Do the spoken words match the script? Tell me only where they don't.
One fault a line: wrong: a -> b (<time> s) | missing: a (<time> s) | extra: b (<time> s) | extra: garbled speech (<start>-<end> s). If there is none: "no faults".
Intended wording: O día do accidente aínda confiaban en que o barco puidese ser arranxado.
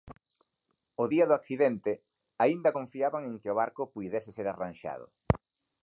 no faults